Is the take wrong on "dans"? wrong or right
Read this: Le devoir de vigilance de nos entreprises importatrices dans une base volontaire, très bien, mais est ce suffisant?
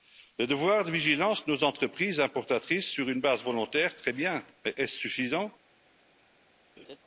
wrong